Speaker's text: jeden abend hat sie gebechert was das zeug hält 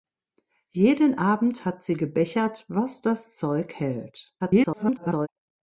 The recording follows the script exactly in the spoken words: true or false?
false